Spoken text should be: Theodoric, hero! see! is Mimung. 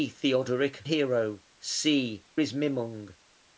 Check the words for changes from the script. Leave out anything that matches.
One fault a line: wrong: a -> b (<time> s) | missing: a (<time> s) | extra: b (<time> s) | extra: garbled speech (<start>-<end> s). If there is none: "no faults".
no faults